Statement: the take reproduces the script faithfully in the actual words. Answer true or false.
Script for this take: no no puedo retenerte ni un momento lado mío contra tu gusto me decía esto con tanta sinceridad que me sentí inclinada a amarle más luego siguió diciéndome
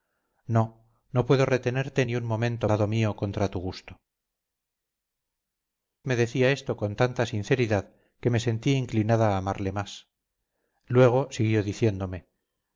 true